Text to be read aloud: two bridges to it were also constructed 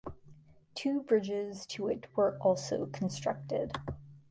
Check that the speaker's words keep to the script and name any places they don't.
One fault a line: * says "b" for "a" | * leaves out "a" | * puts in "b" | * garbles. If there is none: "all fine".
all fine